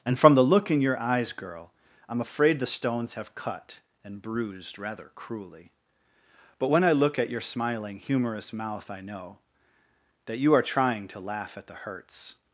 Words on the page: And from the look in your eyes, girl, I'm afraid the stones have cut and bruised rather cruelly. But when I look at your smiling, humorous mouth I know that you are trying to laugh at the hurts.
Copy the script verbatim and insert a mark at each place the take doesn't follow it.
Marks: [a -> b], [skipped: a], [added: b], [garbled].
And from the look in your eyes, girl, I'm afraid the stones have cut and bruised rather cruelly. But when I look at your smiling, humorous mouth I know that you are trying to laugh at the hurts.